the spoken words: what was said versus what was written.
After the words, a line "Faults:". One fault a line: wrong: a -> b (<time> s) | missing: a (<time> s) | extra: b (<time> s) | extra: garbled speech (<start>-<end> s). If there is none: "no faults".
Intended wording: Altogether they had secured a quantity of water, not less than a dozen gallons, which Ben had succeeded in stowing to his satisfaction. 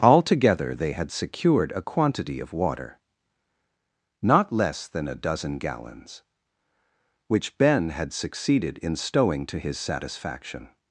Altogether they had secured a quantity of water, not less than a dozen gallons, which Ben had succeeded in stowing to his satisfaction.
Faults:
no faults